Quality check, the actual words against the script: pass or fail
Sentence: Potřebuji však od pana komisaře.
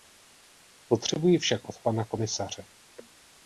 pass